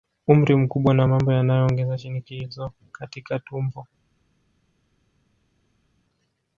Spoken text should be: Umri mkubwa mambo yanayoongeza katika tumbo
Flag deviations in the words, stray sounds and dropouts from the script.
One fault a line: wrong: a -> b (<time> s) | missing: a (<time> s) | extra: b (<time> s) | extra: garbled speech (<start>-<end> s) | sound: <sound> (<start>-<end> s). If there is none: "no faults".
extra: na (0.9 s)
extra: shinikizo (2.0 s)